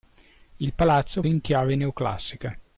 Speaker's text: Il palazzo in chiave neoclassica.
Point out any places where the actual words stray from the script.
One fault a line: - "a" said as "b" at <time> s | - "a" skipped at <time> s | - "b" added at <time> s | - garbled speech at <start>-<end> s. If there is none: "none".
none